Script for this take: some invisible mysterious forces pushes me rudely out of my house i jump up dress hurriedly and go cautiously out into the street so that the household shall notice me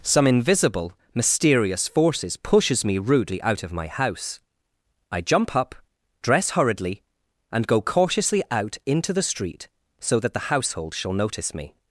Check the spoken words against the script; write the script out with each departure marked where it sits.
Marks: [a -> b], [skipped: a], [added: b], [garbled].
some invisible mysterious forces pushes me rudely out of my house i jump up dress hurriedly and go cautiously out into the street so that the household shall notice me